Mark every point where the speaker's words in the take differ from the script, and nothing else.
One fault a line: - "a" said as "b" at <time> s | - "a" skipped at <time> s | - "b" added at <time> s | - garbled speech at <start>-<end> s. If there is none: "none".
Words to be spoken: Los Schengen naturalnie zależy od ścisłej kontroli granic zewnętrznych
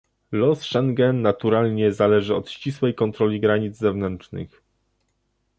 none